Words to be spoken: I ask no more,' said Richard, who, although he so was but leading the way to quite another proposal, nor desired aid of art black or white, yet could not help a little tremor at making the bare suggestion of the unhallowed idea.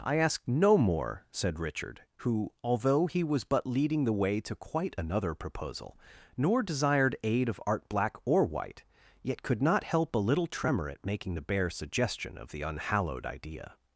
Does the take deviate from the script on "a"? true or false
false